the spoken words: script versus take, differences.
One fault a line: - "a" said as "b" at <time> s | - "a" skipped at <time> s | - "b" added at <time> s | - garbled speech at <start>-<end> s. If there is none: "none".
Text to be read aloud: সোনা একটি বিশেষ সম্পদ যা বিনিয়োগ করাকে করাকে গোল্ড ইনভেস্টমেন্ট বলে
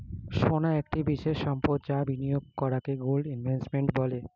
- "করাকে" skipped at 2.9 s